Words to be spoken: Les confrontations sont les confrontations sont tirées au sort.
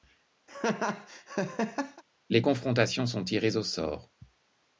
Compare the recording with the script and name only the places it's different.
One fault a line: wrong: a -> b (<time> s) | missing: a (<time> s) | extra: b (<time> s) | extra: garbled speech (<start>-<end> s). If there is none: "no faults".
missing: les confrontations sont (3.2 s)